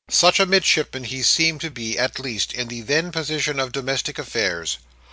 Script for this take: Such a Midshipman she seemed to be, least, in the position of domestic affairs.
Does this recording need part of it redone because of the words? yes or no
yes